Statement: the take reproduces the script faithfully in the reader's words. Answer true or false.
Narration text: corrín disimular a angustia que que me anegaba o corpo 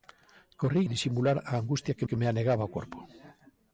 true